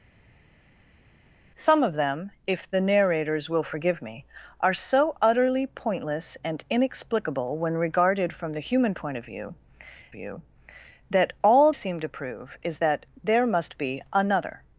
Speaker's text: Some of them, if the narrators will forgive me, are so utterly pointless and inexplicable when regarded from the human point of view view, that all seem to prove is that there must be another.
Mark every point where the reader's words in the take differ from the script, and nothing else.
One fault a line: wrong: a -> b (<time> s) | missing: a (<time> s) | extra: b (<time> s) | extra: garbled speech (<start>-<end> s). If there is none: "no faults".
no faults